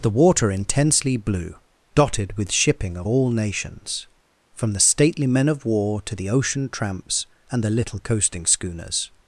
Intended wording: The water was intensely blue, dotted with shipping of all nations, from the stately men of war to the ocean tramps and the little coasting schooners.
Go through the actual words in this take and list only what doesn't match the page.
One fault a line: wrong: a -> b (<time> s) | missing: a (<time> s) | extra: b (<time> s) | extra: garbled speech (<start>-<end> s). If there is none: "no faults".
missing: was (0.5 s)